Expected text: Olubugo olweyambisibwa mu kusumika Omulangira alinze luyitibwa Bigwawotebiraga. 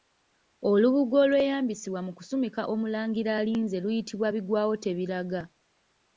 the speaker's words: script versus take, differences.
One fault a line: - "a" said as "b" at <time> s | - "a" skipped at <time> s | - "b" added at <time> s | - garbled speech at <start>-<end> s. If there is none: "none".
none